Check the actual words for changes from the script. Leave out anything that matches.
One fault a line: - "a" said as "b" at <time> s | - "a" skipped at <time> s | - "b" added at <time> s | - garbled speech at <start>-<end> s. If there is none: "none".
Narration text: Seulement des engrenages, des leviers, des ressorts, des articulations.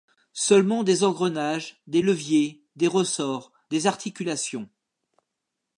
none